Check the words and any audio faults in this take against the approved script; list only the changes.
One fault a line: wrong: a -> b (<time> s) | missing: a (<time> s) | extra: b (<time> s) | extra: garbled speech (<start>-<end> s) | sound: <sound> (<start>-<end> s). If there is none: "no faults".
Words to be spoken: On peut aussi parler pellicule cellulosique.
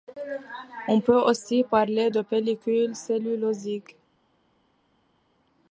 extra: de (2.1 s)